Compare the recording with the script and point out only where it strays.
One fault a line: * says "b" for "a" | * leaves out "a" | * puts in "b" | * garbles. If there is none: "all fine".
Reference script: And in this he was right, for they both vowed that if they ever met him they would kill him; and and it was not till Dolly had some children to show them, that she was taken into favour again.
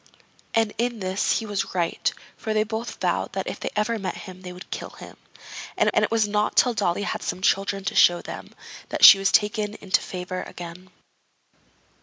all fine